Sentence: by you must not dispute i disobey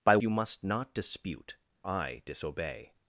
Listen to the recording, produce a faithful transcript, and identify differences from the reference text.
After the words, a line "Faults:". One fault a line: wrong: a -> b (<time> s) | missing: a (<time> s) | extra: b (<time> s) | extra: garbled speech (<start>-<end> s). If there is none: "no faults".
by you must not dispute i disobey
Faults:
no faults